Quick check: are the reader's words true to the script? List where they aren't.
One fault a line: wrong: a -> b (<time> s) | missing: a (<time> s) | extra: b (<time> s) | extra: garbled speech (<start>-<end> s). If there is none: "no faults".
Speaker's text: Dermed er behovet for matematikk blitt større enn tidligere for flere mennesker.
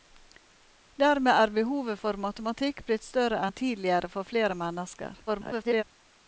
extra: garbled speech (5.3-5.8 s)